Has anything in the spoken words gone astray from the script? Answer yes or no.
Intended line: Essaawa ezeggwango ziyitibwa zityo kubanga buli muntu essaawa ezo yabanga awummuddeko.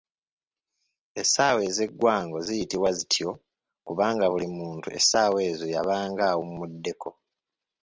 no